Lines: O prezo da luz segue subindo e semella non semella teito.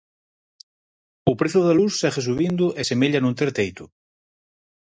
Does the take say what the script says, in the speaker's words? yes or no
no